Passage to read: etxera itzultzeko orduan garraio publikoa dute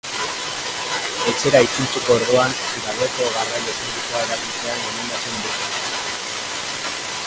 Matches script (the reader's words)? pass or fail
fail